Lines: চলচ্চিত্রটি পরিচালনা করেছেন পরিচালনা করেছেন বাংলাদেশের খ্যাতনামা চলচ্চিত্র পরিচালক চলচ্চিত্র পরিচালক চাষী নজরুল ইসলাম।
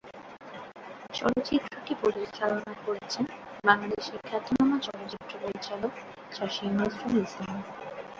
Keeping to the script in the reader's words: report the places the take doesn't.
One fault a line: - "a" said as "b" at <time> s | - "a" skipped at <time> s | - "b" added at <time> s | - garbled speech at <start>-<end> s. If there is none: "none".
- "পরিচালনা করেছেন" skipped at 3.2 s
- "চলচ্চিত্র পরিচালক" skipped at 5.9 s